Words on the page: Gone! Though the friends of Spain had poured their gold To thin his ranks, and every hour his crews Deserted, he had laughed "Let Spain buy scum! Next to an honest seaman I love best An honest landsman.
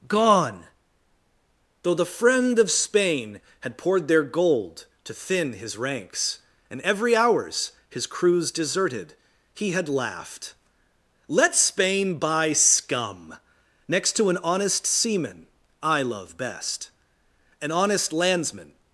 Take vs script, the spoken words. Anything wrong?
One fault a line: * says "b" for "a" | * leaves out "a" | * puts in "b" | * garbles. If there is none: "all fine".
* says "friend" for "friends"
* says "hours" for "hour"